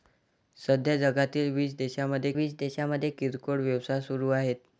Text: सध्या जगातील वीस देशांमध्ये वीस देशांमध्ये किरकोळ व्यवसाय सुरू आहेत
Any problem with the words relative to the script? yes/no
no